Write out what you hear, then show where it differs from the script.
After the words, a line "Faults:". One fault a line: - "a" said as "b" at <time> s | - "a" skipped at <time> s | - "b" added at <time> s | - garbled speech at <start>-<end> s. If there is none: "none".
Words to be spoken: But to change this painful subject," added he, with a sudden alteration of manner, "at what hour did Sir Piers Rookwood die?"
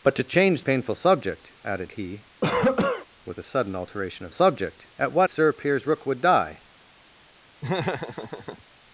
But to change painful subject," added he, with a sudden alteration of subject, "at what Sir Piers Rookwood die?"
Faults:
- "this" skipped at 0.6 s
- "manner" said as "subject" at 4.3 s
- "hour did" skipped at 5.3 s